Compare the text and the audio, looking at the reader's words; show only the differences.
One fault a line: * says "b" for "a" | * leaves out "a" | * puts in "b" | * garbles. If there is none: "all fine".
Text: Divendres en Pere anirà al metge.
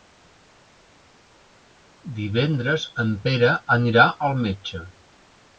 all fine